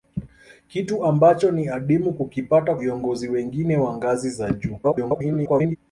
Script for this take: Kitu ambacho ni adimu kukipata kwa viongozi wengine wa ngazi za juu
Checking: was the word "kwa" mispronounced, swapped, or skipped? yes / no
yes